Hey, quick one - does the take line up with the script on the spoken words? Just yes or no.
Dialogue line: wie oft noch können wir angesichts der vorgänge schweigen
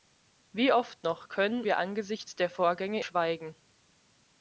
yes